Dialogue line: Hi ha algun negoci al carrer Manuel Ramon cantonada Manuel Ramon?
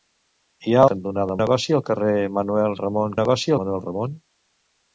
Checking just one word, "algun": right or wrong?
wrong